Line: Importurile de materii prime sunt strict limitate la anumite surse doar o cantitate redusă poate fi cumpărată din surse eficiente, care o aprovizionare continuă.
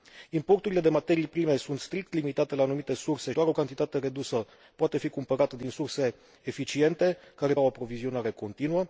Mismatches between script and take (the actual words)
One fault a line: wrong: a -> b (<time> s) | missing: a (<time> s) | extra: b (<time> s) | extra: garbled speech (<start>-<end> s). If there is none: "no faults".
no faults